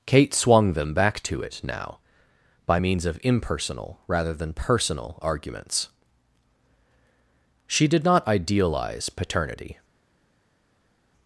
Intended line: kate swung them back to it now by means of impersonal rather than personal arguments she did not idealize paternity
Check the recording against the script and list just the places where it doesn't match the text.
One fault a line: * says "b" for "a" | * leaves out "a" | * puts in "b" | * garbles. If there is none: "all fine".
all fine